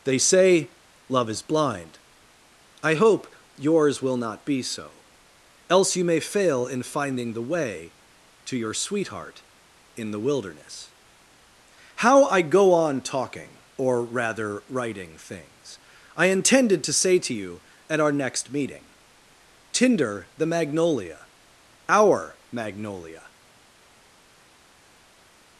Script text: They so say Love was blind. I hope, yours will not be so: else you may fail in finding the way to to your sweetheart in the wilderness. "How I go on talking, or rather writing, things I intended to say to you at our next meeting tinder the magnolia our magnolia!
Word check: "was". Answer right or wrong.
wrong